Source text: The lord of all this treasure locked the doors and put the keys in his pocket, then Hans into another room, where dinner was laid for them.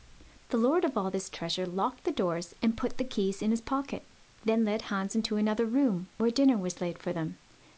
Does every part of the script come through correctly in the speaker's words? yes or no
no